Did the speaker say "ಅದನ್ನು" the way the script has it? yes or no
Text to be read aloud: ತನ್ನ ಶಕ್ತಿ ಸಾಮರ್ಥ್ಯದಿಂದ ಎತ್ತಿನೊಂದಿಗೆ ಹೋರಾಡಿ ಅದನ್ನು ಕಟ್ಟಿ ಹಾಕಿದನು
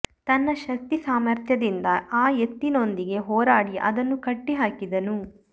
yes